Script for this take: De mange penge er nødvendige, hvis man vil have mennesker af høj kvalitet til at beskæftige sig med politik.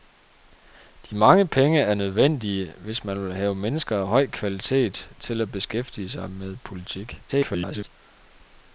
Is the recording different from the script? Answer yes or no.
yes